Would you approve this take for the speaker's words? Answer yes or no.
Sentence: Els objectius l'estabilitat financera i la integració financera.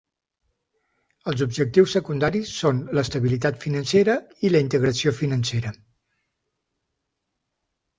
no